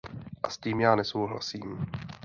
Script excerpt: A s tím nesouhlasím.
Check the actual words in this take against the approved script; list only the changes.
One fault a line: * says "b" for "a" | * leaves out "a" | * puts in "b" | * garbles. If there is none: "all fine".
* puts in "já"